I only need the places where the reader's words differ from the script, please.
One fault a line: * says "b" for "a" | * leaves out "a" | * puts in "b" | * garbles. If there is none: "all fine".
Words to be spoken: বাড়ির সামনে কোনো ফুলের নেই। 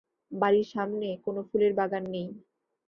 * puts in "বাগান"